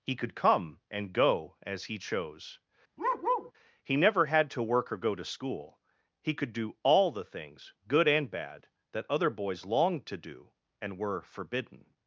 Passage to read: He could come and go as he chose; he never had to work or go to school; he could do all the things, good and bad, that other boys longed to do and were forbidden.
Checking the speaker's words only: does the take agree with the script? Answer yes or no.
yes